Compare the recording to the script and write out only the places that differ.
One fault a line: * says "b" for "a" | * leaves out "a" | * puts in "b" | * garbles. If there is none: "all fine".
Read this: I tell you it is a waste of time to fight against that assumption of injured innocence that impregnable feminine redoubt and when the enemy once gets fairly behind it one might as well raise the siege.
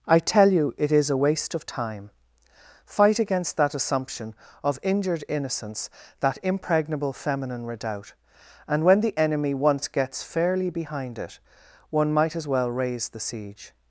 * leaves out "to"